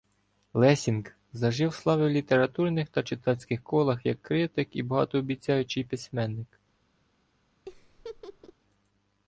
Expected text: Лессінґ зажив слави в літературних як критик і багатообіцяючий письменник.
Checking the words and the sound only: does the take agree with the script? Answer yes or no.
no